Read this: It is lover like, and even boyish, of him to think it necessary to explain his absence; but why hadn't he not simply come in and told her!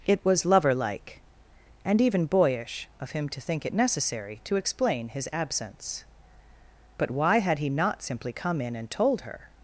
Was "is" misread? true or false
true